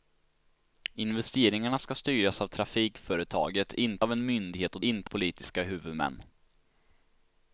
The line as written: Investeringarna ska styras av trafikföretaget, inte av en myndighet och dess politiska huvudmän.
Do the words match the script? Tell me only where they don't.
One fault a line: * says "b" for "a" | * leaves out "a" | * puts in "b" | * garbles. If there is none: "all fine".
* says "inte" for "dess"